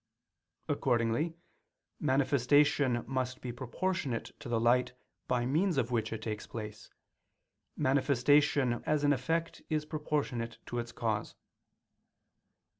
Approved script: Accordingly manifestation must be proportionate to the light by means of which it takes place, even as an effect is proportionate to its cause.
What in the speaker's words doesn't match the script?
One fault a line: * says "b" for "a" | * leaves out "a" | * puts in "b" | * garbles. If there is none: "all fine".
* says "manifestation" for "even"